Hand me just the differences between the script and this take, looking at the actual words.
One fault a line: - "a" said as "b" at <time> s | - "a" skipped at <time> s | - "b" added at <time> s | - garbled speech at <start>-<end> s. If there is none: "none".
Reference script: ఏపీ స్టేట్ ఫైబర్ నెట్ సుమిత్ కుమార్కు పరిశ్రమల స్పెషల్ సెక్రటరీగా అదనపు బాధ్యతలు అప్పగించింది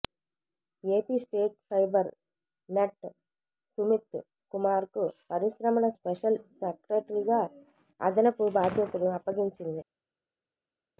none